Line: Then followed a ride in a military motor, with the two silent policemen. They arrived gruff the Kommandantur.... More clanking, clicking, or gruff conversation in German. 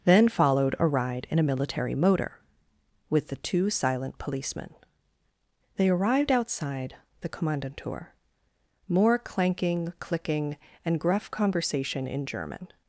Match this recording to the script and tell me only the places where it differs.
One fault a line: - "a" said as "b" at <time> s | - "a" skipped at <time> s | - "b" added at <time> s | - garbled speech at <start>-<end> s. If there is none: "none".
- "gruff" said as "outside" at 6.3 s
- "or" said as "and" at 10.8 s